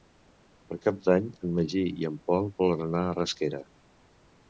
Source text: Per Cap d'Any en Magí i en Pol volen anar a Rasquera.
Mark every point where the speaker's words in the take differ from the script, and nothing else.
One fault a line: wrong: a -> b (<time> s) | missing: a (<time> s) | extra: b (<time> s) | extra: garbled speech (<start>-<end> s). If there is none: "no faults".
no faults